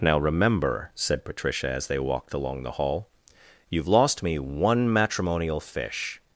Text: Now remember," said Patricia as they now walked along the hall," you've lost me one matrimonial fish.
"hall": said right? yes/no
yes